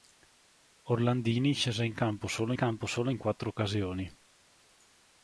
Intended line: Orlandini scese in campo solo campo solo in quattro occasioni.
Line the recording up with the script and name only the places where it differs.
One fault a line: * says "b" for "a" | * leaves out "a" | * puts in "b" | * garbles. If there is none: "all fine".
all fine